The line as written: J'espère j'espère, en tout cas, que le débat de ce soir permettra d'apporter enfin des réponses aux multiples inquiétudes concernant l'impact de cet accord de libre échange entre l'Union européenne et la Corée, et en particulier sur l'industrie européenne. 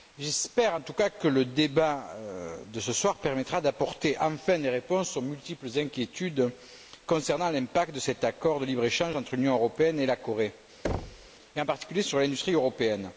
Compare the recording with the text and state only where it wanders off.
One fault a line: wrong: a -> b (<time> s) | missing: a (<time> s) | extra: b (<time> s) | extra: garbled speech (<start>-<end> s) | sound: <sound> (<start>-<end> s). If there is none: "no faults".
missing: j'espère (0.8 s)
sound: thud (10.8-11.3 s)